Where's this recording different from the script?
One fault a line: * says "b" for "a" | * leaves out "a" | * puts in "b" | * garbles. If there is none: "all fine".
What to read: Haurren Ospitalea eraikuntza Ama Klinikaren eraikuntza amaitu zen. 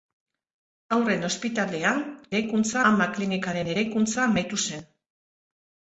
all fine